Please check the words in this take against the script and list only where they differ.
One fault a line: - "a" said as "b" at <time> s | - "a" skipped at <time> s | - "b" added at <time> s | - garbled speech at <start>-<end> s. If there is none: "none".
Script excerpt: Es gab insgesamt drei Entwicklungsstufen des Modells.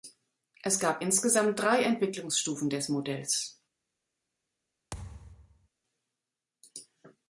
none